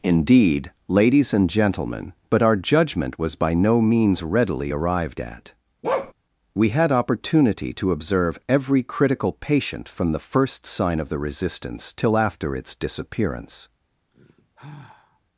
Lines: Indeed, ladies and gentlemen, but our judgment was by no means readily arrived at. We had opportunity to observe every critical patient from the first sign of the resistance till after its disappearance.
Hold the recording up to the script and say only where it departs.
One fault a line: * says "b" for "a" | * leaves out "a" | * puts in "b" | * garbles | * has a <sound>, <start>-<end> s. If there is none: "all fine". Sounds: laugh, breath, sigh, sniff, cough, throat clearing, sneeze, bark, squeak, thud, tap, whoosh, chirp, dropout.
* has a bark, 5.8-6.1 s
* has a sigh, 14.1-15.2 s